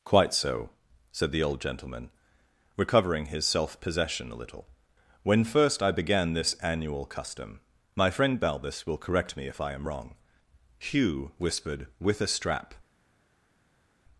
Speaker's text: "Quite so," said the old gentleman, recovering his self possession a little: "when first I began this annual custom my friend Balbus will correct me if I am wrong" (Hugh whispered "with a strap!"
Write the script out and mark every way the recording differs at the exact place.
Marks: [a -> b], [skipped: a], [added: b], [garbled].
"Quite so," said the old gentleman, recovering his self possession a little: "when first I began this annual custom my friend Balbus will correct me if I am wrong" (Hugh whispered "with a strap!"